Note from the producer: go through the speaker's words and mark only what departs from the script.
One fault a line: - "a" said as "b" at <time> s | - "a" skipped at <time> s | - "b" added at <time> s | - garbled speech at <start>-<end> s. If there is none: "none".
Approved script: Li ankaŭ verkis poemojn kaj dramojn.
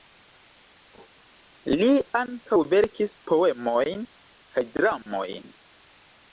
none